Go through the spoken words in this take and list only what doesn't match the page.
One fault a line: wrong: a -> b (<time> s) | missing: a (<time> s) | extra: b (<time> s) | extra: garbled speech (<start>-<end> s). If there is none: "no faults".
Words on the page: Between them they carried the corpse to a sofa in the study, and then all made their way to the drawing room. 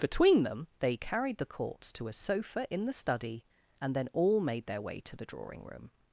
no faults